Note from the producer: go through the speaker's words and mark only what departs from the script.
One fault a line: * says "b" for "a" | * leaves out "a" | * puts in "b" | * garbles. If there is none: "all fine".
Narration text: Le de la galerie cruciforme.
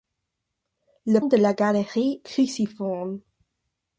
all fine